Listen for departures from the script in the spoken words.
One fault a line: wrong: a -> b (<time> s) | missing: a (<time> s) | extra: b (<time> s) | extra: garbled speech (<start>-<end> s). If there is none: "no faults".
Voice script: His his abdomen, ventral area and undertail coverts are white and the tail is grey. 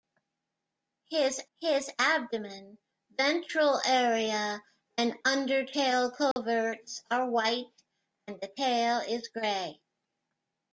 no faults